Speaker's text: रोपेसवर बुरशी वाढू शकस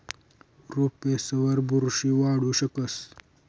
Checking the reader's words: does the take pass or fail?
pass